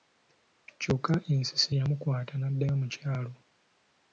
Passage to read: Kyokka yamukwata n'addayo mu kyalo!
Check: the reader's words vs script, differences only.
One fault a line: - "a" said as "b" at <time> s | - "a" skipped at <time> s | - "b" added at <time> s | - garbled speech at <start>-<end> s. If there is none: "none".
- "ensisi" added at 1.3 s